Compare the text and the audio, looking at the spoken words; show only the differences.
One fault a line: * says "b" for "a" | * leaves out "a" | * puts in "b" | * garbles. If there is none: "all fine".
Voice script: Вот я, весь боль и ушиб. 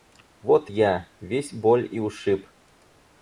all fine